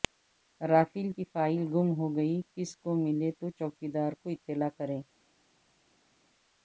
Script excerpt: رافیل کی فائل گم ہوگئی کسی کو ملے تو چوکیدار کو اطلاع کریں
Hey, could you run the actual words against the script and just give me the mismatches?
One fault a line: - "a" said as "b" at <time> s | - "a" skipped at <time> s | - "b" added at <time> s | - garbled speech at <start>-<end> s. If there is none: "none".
none